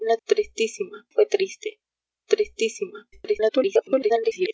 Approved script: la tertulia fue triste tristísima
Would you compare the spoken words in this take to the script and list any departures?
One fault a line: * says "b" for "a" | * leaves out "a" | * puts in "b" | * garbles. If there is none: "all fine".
* says "tristísima" for "tertulia"
* garbles